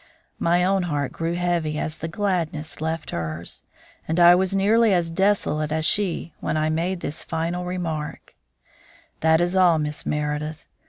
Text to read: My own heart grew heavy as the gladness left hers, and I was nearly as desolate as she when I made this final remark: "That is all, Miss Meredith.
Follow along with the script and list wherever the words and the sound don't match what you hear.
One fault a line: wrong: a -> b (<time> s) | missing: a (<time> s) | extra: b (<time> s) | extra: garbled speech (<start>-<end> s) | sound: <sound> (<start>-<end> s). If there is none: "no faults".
no faults